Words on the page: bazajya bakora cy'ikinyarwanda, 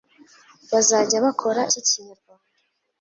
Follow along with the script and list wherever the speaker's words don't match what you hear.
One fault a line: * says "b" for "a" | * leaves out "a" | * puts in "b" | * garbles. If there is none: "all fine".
all fine